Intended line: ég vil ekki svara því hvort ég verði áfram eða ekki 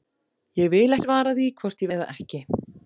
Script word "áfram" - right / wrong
wrong